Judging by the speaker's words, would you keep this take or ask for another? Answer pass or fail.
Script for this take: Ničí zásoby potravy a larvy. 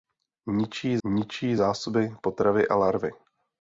fail